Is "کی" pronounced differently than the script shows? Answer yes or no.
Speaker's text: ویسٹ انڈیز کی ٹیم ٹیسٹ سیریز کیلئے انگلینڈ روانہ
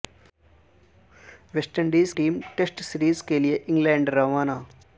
yes